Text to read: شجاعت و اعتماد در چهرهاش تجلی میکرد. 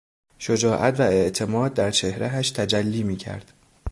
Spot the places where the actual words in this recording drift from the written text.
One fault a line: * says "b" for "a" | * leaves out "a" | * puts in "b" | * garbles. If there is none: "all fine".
all fine